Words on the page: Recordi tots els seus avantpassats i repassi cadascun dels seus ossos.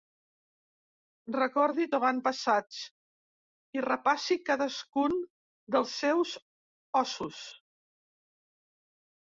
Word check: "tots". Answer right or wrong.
wrong